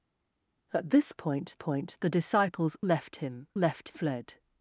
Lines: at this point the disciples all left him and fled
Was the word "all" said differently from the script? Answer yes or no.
yes